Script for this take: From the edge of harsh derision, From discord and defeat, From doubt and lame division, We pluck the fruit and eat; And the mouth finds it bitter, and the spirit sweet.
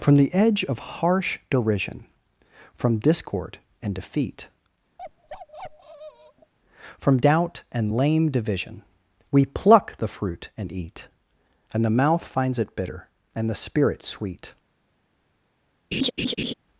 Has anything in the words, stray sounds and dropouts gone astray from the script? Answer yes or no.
yes